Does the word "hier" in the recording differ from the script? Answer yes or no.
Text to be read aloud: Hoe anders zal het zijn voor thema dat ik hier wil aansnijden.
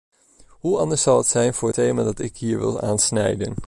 no